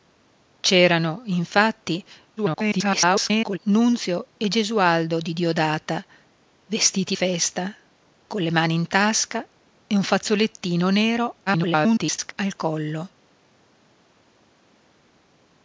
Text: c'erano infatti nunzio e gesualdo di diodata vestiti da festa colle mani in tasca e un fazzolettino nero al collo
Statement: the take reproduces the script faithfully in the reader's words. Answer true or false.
false